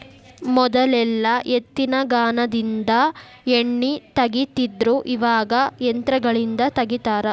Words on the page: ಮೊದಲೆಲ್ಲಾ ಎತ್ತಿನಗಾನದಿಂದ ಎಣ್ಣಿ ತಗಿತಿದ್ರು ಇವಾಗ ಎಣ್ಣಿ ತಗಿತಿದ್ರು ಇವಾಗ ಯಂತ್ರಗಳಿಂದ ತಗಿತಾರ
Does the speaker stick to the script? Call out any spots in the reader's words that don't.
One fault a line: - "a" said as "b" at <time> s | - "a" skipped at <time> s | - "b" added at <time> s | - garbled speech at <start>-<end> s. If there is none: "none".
- "ಎಣ್ಣಿ ತಗಿತಿದ್ರು ಇವಾಗ" skipped at 5.5 s